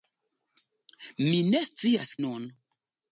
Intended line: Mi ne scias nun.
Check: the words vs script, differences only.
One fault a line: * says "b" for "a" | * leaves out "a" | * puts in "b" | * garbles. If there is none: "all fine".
all fine